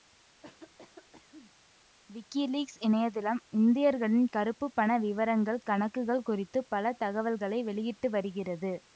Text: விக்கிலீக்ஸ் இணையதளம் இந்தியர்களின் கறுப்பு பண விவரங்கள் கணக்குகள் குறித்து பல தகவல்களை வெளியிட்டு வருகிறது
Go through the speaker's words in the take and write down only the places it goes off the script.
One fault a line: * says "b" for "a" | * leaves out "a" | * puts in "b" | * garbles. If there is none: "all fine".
all fine